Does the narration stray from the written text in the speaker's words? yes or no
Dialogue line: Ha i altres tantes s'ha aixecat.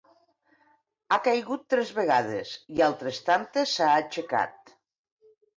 yes